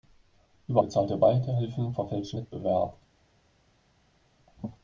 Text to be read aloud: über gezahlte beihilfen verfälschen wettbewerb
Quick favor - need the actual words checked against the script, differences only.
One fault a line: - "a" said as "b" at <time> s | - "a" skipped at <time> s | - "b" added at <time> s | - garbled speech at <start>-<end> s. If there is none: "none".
none